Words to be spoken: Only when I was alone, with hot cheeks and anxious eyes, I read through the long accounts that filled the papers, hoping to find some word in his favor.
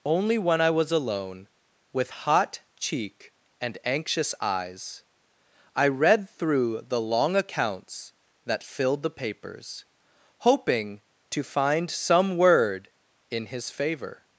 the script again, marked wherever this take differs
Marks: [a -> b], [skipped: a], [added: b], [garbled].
Only when I was alone, with hot [cheeks -> cheek] and anxious eyes, I read through the long accounts that filled the papers, hoping to find some word in his favor.